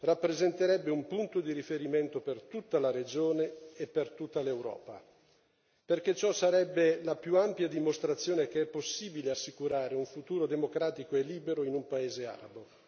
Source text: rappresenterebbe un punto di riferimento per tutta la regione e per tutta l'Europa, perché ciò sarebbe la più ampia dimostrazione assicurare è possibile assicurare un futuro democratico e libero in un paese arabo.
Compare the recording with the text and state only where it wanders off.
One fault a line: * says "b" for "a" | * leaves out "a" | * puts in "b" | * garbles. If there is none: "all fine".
* says "che" for "assicurare"